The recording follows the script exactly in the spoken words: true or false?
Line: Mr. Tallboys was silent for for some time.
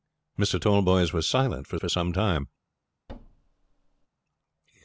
true